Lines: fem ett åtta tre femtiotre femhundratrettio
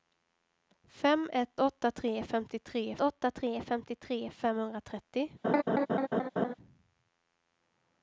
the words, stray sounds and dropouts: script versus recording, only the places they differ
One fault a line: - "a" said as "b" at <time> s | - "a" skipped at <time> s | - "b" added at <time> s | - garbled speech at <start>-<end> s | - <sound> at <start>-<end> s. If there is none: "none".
- "åtta tre femtiotre" added at 3.0 s
- laugh at 5.4-6.5 s